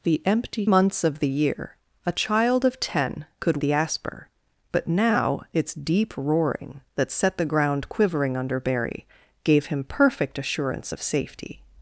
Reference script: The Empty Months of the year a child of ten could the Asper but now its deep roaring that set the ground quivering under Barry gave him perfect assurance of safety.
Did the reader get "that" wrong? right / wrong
right